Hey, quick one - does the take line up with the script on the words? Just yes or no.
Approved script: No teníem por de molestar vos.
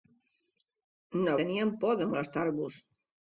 yes